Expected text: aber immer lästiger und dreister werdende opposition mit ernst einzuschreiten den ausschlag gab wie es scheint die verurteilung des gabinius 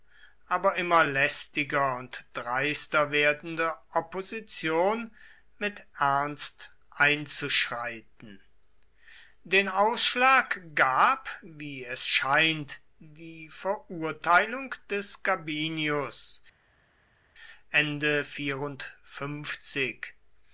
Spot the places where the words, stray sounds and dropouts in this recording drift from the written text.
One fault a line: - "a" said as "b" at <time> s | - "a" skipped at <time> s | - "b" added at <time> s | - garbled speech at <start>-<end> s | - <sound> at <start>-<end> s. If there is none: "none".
none